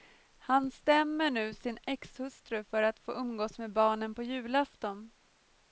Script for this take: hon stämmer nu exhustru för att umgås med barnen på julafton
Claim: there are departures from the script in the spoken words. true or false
true